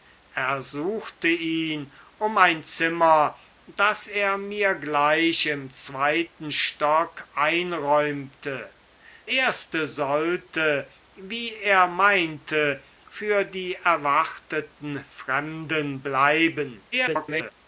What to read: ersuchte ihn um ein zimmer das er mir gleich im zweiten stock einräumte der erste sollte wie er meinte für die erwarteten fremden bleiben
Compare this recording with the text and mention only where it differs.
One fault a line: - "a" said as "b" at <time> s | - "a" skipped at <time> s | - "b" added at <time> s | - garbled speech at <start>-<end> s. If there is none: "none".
- "der" skipped at 8.7 s
- garbled speech at 16.9-17.5 s